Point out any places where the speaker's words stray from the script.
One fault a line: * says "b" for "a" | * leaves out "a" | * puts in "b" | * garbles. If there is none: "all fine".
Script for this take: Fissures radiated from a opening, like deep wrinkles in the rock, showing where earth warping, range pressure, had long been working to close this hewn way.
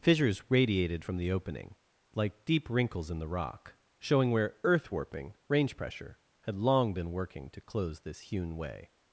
* says "the" for "a"